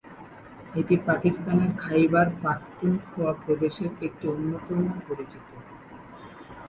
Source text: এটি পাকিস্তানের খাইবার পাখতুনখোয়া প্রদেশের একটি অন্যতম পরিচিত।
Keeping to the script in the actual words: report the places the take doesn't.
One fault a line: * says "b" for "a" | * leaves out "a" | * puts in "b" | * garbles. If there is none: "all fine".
all fine